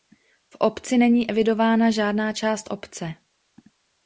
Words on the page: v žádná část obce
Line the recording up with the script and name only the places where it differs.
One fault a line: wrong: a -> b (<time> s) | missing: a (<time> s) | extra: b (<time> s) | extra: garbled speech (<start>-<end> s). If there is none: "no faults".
extra: obci není evidována (0.6 s)